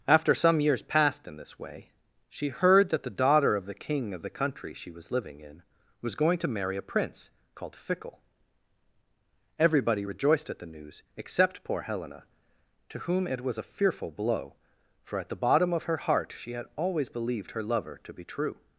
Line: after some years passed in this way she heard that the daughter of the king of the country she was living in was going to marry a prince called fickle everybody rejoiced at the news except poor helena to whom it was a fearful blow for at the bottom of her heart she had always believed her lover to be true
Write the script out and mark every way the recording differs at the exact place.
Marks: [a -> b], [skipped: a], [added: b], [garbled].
after some years passed in this way she heard that the daughter of the king of the country she was living in was going to marry a prince called fickle everybody rejoiced at the news except poor helena to whom it was a fearful blow for at the bottom of her heart she had always believed her lover to be true